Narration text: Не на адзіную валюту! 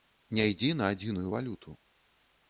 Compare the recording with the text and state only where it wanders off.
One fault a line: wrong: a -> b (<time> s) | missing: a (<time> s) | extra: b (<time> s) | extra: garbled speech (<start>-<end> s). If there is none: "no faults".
extra: ідзі (0.5 s)